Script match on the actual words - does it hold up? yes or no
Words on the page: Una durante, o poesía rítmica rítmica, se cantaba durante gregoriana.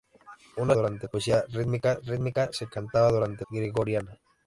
yes